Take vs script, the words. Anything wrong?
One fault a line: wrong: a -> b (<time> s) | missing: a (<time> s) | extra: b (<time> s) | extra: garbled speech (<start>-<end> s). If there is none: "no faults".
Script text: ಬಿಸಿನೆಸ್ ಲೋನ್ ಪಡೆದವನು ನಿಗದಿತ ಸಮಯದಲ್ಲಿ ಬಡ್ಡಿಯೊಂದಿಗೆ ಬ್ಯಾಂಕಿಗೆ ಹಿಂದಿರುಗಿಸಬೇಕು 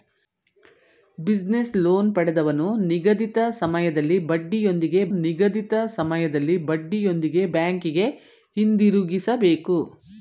extra: ನಿಗದಿತ ಸಮಯದಲ್ಲಿ ಬಡ್ಡಿಯೊಂದಿಗೆ (5.2 s)